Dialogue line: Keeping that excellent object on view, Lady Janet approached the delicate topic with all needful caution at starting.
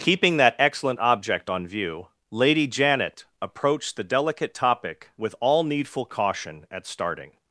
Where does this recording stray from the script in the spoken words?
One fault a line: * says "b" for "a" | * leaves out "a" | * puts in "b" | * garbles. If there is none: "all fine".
all fine